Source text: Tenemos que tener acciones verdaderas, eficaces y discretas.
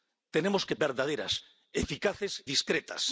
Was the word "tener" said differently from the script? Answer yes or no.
yes